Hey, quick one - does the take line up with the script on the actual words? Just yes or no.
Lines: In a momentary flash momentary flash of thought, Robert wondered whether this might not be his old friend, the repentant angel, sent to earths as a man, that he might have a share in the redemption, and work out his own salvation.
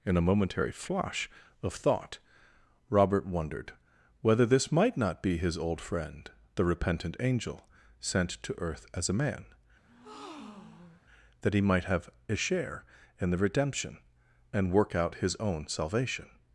no